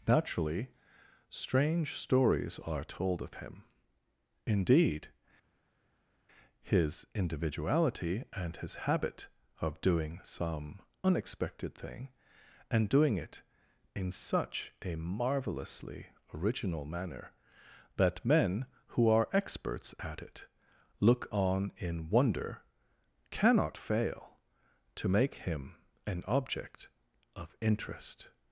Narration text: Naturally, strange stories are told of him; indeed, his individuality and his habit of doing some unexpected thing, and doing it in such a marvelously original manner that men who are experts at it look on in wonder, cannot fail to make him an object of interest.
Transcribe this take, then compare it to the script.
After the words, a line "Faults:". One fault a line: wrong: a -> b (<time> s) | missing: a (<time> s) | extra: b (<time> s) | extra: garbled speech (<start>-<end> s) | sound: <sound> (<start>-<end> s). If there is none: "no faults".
Naturally, strange stories are told of him; indeed, his individuality and his habit of doing some unexpected thing, and doing it in such a marvelously original manner that men who are experts at it look on in wonder, cannot fail to make him an object of interest.
Faults:
no faults